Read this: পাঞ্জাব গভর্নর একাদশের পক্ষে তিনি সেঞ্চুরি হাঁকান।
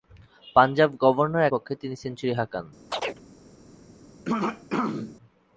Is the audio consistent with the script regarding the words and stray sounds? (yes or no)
no